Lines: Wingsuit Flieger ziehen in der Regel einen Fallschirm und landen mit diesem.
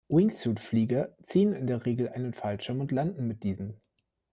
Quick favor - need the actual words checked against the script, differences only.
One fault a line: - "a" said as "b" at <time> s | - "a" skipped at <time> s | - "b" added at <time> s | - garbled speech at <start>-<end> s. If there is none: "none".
none